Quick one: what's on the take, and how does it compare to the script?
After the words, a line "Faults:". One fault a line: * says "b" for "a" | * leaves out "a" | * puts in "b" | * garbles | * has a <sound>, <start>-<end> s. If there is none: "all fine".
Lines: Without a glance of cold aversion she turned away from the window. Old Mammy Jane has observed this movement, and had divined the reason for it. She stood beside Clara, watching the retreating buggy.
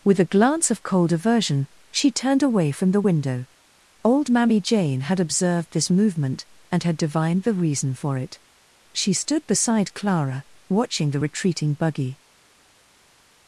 With a glance of cold aversion she turned away from the window. Old Mammy Jane had observed this movement, and had divined the reason for it. She stood beside Clara, watching the retreating buggy.
Faults:
* says "With" for "Without"
* says "had" for "has"